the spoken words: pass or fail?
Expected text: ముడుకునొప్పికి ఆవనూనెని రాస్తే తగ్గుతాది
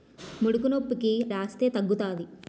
fail